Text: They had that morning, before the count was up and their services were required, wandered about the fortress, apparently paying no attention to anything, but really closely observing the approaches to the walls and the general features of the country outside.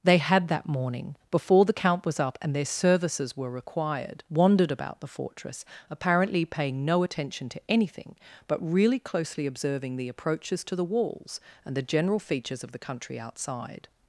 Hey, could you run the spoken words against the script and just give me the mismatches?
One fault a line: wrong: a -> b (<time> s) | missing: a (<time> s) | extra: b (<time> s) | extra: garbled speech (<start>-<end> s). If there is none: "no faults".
no faults